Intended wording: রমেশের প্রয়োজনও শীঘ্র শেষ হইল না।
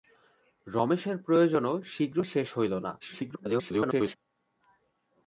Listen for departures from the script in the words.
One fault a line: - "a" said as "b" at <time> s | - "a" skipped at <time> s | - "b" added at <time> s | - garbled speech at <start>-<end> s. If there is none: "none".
- garbled speech at 3.0-4.2 s